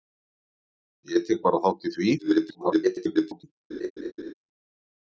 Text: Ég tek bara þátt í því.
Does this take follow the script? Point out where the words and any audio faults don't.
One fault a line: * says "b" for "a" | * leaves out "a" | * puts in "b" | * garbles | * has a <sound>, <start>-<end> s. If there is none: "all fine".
* garbles
* has a laugh, 3.7-4.3 s